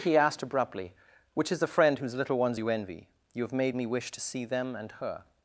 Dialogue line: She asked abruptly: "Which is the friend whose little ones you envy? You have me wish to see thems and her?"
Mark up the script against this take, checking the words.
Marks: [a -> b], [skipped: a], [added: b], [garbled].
[She -> He] asked abruptly: "Which is the friend whose little ones you envy? You have [added: made] me wish to see [thems -> them] and her?"